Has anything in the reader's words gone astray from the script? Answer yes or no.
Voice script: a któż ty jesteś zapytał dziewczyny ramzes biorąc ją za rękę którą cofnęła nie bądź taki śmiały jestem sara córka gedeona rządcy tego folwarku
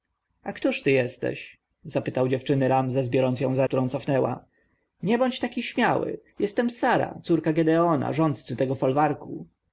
yes